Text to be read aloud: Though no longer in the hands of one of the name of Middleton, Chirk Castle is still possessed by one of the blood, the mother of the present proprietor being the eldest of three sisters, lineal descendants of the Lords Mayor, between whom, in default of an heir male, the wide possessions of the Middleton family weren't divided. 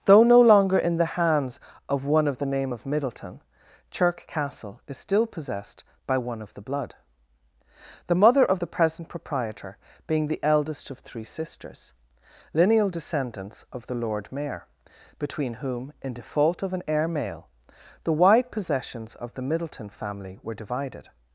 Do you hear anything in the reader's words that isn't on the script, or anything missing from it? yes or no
yes